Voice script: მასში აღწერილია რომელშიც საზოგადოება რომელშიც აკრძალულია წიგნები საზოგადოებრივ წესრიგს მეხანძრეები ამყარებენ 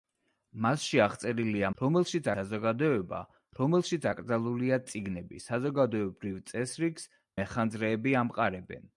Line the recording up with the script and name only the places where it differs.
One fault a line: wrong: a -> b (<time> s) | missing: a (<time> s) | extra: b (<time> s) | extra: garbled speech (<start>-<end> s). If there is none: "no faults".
no faults